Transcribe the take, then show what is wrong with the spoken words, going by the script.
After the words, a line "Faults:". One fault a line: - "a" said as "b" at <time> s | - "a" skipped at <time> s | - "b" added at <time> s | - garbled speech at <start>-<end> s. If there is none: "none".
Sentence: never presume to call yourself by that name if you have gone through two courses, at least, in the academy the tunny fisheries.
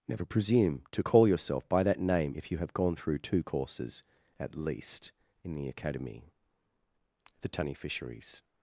never presume to call yourself by that name if you have gone through two courses, at least, in the academy the tunny fisheries.
Faults:
none